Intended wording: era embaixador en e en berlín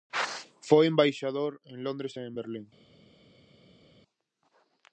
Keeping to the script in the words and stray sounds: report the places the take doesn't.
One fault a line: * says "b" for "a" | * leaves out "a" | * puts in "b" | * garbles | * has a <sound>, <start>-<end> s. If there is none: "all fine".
* says "foi" for "era"
* puts in "londres"